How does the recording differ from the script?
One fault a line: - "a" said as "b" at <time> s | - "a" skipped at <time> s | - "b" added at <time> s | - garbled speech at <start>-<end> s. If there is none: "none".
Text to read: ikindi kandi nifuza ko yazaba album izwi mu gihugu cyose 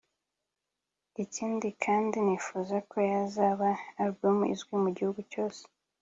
none